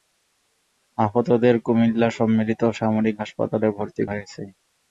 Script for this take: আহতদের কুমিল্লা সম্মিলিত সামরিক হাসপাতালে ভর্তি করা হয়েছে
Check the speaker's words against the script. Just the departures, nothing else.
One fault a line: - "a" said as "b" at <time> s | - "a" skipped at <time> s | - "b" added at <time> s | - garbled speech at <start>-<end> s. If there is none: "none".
- "করা" skipped at 4.0 s